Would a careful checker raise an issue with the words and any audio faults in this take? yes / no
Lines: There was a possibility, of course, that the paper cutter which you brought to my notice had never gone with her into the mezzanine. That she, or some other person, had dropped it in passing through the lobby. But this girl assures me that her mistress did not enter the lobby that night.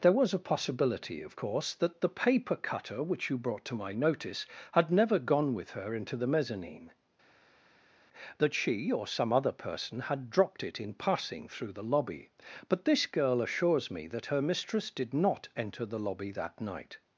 no